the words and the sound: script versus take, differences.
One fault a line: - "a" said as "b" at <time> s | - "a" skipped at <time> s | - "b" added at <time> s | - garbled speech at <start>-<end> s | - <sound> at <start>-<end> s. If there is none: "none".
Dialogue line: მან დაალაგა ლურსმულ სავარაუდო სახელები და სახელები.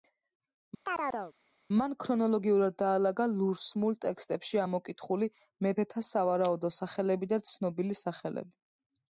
- chirp at 0.9-1.3 s
- "ქრონოლოგიურად" added at 2.0 s
- "ტექსტებში ამოკითხული მეფეთა" added at 4.0 s
- "ცნობილი" added at 7.5 s